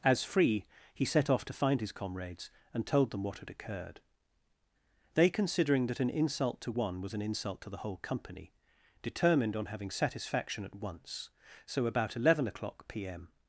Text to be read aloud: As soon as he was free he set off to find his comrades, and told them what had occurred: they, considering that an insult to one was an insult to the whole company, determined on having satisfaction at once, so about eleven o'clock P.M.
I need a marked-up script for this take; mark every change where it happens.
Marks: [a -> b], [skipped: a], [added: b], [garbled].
As [skipped: soon as he was] free he set off to find his comrades, and told them what had occurred: they, considering that an insult to one was an insult to the whole company, determined on having satisfaction at once, so about eleven o'clock P.M.